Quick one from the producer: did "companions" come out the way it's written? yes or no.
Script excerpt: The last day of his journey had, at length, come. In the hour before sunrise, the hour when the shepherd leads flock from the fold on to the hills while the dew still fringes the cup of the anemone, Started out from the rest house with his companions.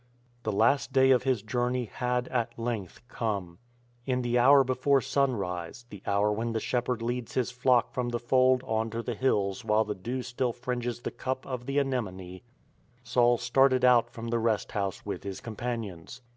yes